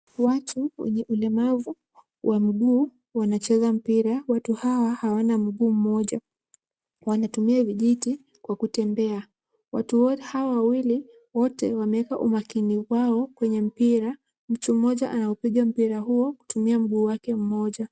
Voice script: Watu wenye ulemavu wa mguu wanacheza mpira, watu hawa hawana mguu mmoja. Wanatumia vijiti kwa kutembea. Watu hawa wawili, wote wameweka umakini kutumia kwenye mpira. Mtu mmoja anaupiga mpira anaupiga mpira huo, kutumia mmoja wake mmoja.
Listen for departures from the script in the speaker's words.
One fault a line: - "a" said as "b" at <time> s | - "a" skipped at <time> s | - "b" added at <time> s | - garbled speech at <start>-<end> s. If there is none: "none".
- "kutumia" said as "wao" at 12.9 s
- "anaupiga mpira" skipped at 16.0 s
- "mmoja" said as "mguu" at 16.8 s